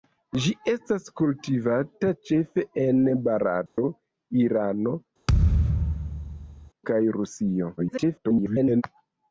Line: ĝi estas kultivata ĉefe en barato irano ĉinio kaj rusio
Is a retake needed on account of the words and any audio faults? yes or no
yes